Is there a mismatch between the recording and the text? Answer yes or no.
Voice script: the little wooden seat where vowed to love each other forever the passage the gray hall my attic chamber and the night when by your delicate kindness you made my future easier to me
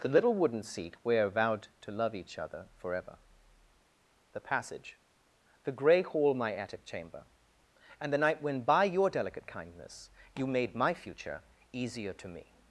no